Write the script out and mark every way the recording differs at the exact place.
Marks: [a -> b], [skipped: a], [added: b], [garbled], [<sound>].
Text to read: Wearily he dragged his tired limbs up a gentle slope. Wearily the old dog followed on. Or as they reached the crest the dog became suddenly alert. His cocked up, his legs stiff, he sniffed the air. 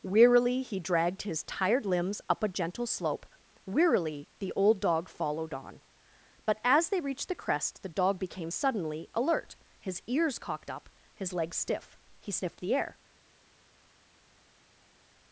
Wearily he dragged his tired limbs up a gentle slope. Wearily the old dog followed on. [Or -> But] as they reached the crest the dog became suddenly alert. His [added: ears] cocked up, his legs stiff, he sniffed the air.